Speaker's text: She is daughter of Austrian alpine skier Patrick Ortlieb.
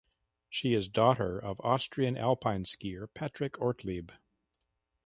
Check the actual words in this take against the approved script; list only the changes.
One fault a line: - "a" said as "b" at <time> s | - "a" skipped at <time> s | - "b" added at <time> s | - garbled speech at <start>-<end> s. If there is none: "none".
none